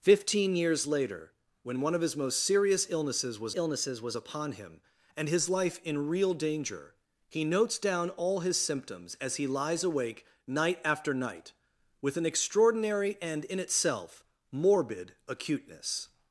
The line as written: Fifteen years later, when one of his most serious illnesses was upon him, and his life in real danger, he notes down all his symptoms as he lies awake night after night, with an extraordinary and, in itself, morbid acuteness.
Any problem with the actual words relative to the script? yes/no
yes